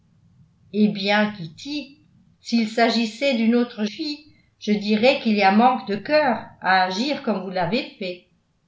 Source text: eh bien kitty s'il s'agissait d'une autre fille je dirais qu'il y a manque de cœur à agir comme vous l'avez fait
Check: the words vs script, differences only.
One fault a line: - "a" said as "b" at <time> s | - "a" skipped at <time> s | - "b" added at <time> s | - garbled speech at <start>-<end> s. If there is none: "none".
none